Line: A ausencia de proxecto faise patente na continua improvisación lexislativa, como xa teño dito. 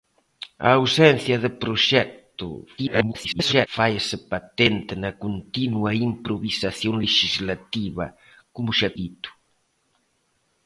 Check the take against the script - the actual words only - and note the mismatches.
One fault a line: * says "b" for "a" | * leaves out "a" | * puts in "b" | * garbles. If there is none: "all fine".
* garbles
* leaves out "teño"